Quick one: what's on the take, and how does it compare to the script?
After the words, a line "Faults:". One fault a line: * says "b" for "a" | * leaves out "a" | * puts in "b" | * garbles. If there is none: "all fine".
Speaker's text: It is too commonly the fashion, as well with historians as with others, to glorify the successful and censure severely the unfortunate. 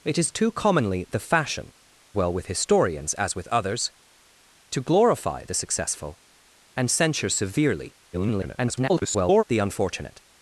It is too commonly the fashion, well with historians as with others, to glorify the successful and censure severely [garbled] the unfortunate.
Faults:
* leaves out "as"
* garbles